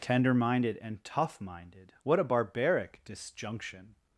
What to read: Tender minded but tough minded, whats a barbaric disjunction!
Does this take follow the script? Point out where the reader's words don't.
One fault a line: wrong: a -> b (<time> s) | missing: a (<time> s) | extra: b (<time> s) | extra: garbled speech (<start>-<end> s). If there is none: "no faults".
wrong: but -> and (0.8 s)
wrong: whats -> what (2.0 s)